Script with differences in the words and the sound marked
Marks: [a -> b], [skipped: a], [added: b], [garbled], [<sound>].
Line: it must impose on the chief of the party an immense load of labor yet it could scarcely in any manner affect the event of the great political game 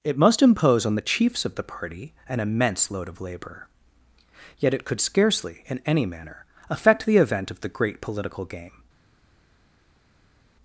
it must impose on the [chief -> chiefs] of the party an immense load of labor yet it could scarcely in any manner affect the event of the great political game